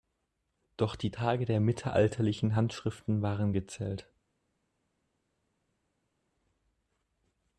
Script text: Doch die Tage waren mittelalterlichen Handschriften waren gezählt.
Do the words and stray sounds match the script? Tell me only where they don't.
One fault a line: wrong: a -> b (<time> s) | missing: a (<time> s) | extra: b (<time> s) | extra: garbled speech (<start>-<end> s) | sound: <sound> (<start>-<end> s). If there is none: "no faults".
wrong: waren -> der (1.4 s)